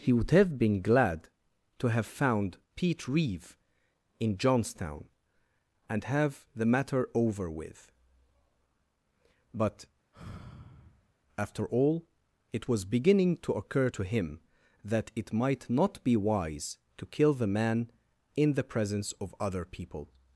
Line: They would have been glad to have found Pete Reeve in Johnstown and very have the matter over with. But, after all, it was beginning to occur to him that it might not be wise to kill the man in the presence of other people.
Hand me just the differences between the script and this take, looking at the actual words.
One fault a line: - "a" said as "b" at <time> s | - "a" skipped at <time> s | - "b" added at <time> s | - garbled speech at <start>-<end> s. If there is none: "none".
- "They" said as "He" at 0.0 s
- "very" skipped at 6.0 s